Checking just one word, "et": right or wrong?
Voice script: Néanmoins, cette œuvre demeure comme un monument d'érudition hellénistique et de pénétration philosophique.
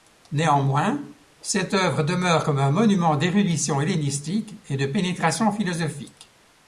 right